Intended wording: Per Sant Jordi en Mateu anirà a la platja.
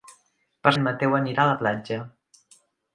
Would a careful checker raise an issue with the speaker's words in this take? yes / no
yes